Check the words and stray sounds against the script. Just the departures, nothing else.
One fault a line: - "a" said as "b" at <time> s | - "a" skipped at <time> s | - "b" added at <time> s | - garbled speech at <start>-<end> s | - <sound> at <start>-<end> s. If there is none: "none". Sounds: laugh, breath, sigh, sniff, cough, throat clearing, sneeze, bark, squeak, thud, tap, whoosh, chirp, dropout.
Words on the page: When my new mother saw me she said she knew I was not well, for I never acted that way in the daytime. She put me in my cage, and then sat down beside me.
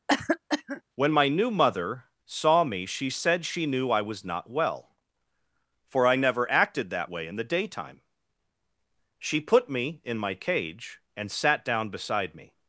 - cough at 0.1-0.8 s
- "then" skipped at 11.3 s